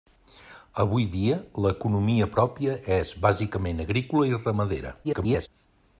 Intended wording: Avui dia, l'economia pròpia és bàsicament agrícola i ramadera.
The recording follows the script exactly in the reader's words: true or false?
false